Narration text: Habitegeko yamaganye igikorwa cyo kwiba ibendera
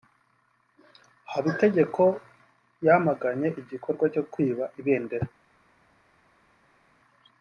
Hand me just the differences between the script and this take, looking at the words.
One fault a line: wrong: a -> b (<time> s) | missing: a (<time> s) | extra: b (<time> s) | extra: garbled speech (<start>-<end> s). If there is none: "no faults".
no faults